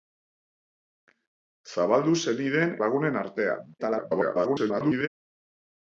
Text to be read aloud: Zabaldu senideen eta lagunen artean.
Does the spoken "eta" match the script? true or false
false